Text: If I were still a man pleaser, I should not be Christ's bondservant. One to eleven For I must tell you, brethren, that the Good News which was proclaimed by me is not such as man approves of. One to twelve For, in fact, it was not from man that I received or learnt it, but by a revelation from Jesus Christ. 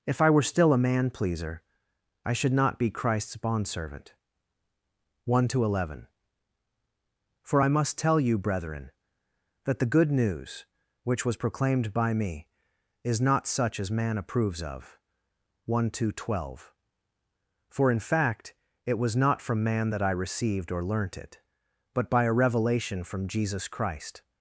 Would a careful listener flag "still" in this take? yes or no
no